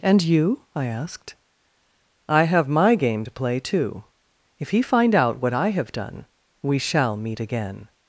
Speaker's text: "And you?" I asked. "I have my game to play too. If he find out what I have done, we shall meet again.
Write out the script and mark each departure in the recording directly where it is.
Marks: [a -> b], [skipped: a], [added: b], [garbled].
"And you?" I asked. "I have my game to play too. If he find out what I have done, we shall meet again.